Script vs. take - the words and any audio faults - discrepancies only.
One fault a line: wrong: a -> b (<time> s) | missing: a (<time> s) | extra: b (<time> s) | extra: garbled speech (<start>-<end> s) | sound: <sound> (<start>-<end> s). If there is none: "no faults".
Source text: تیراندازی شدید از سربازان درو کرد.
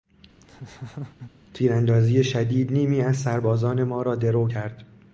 sound: laugh (0.4-1.3 s)
extra: نیمی (2.7 s)
extra: ما را (3.8 s)